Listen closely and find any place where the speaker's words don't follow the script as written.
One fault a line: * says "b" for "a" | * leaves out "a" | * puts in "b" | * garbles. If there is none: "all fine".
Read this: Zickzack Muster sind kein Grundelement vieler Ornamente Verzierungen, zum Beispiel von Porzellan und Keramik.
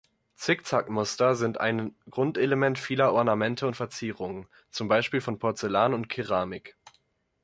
* says "ein" for "kein"
* puts in "und"